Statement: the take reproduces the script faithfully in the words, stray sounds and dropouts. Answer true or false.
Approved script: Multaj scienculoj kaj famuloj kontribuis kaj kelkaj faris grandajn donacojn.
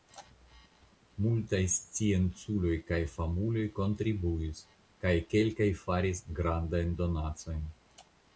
true